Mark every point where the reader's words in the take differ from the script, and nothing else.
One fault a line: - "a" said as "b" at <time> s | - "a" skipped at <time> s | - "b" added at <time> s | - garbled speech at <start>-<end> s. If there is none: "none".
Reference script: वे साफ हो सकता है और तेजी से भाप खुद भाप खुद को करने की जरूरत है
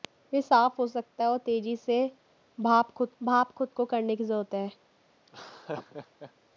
none